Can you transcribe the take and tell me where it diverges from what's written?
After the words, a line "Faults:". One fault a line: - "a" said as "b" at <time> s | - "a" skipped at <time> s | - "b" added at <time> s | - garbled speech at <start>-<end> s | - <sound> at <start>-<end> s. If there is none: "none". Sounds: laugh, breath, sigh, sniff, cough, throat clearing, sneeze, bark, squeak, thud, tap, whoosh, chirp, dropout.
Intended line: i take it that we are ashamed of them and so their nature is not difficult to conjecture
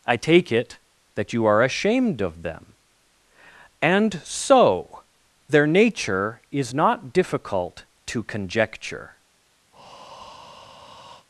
i take it that you are ashamed of them and so their nature is not difficult to conjecture
Faults:
- "we" said as "you" at 1.3 s
- breath at 9.7-11.3 s